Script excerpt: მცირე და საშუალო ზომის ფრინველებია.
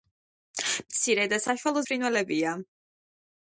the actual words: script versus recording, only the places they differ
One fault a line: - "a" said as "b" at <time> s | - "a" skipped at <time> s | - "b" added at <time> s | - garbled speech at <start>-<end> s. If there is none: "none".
- "ზომის" skipped at 1.8 s